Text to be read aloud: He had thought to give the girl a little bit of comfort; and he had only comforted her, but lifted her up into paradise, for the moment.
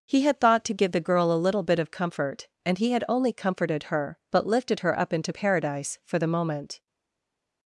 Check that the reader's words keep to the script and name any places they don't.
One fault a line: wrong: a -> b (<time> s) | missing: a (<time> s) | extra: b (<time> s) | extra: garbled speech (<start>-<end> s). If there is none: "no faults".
no faults